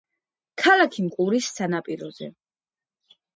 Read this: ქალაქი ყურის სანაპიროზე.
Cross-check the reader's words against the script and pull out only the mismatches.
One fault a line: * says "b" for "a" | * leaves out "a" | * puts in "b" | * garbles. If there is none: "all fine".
all fine